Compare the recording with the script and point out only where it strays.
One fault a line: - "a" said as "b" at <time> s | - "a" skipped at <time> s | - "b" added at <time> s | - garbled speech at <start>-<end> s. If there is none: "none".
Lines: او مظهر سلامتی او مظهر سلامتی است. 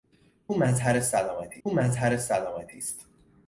none